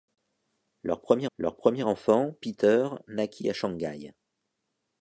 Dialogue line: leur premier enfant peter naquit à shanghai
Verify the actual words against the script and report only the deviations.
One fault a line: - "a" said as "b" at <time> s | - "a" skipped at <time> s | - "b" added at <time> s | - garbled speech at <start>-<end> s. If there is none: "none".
- "leur premier" added at 1.4 s